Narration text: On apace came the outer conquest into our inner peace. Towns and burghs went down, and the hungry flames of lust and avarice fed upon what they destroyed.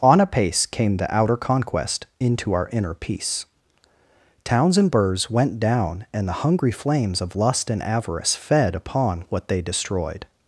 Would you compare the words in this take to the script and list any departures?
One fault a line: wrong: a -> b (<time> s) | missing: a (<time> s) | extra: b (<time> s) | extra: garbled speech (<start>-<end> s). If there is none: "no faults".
no faults